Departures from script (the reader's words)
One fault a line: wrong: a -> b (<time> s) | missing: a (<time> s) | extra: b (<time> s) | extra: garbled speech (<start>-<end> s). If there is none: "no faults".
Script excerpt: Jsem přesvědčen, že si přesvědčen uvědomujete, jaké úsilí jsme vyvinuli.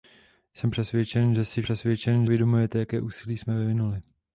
no faults